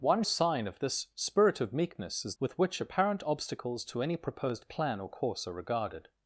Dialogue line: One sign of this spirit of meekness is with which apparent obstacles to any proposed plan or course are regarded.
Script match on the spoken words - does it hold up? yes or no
yes